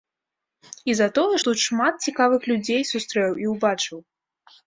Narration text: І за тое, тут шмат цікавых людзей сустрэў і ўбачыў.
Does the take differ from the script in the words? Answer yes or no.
no